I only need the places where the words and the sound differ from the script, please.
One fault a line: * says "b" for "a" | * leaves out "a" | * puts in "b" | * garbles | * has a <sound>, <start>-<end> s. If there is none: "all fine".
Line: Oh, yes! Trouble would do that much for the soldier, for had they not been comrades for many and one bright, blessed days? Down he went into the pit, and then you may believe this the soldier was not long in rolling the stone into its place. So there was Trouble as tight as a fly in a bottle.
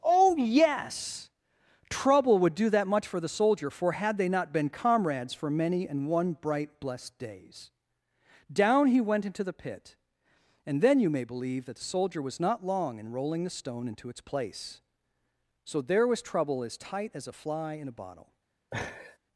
* says "that" for "this"
* has a laugh, 18.7-19.2 s